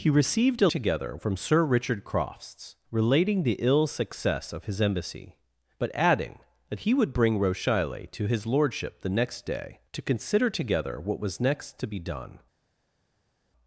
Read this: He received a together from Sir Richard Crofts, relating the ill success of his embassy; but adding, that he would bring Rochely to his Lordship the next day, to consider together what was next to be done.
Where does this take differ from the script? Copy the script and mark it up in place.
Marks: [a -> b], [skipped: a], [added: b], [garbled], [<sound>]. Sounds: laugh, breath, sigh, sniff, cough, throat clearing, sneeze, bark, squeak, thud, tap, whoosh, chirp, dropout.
He received a together from Sir Richard Crofts, relating the ill success of his embassy; but adding, that he would bring Rochely to his Lordship the next day, to consider together what was next to be done.